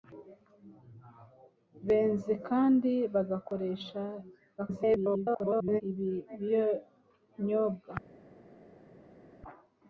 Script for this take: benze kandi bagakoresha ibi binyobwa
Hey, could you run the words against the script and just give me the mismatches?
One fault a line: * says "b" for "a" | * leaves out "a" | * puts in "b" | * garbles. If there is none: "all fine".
* garbles